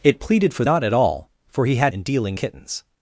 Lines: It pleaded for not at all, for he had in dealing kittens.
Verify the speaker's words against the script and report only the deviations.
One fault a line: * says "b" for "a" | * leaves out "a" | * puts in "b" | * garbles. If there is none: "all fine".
all fine